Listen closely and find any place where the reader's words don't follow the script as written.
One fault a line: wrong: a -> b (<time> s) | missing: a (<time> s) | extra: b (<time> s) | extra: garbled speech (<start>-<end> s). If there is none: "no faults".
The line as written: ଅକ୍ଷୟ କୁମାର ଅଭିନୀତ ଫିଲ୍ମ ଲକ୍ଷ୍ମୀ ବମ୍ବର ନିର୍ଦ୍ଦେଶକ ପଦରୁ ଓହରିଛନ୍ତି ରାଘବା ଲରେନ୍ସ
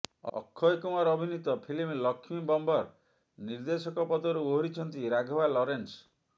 no faults